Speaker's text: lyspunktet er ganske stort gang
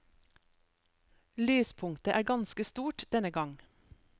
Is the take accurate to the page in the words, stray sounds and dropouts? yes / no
no